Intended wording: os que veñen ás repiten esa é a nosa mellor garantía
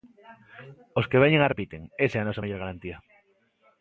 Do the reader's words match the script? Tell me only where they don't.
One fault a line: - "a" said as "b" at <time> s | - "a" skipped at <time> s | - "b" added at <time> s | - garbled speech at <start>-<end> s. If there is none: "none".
none